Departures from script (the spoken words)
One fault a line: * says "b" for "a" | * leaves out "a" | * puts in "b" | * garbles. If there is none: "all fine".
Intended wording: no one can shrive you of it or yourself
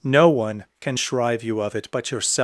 * says "but" for "or"